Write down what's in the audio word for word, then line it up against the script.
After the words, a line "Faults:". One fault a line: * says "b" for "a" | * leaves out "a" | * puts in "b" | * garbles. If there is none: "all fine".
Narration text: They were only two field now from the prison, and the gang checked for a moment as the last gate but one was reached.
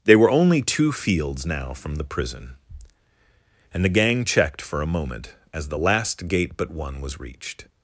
They were only two fields now from the prison, and the gang checked for a moment as the last gate but one was reached.
Faults:
* says "fields" for "field"